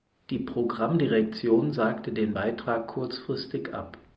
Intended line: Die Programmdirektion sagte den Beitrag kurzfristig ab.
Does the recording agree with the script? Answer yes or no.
yes